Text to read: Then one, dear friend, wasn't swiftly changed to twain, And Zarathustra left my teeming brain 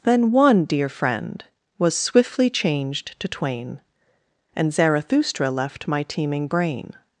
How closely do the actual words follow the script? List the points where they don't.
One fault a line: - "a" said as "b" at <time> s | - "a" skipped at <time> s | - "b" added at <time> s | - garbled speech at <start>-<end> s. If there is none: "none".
- "wasn't" said as "was" at 1.8 s